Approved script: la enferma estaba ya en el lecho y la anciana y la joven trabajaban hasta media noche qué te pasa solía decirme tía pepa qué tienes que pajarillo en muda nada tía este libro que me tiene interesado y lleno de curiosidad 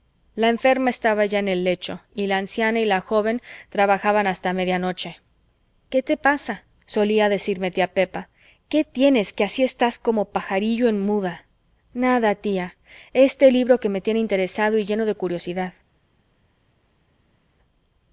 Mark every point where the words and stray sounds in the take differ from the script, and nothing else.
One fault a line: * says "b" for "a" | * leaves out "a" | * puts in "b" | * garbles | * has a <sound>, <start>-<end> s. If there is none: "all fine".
* puts in "así estás como"